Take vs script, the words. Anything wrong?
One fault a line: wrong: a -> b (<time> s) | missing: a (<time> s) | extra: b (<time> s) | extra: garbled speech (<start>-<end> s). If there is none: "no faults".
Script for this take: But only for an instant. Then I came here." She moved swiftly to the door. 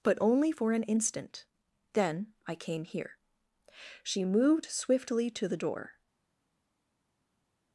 no faults